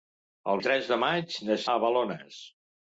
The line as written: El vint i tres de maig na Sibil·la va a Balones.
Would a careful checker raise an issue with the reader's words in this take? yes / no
yes